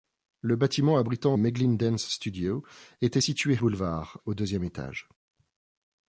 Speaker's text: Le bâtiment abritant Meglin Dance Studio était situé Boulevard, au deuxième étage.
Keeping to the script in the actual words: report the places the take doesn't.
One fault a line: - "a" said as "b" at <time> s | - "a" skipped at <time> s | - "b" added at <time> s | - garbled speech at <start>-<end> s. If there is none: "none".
none